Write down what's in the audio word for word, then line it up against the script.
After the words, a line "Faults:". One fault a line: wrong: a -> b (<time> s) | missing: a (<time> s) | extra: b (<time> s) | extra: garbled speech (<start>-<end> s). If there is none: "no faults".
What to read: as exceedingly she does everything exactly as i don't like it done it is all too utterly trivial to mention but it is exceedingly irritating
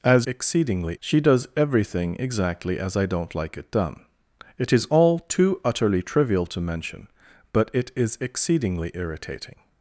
as exceedingly she does everything exactly as i don't like it done it is all too utterly trivial to mention but it is exceedingly irritating
Faults:
no faults